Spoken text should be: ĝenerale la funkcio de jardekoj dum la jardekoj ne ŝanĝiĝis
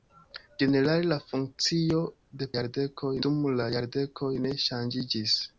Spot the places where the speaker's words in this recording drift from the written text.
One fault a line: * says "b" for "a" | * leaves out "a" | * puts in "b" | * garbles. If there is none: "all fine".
all fine